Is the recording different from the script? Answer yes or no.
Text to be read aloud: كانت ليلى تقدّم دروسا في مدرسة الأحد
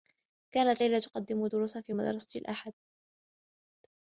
no